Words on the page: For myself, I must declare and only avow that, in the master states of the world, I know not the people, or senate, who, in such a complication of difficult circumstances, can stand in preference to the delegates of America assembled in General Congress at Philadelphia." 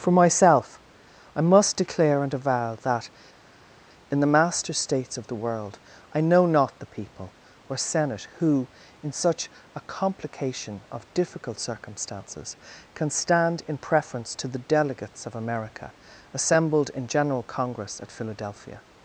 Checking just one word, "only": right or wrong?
wrong